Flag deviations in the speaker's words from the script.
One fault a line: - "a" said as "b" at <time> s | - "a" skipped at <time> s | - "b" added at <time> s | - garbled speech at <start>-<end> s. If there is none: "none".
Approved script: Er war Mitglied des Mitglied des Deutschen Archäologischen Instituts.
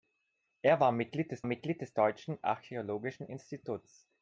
none